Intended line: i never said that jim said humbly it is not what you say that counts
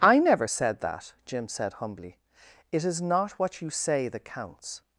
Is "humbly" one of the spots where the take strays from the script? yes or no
no